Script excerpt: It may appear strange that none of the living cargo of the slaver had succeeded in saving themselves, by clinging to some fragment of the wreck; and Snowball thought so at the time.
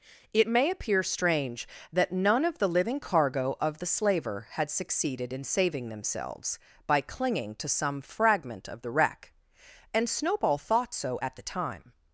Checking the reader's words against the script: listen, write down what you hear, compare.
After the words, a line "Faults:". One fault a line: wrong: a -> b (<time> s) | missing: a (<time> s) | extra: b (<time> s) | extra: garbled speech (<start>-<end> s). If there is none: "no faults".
It may appear strange that none of the living cargo of the slaver had succeeded in saving themselves, by clinging to some fragment of the wreck; and Snowball thought so at the time.
Faults:
no faults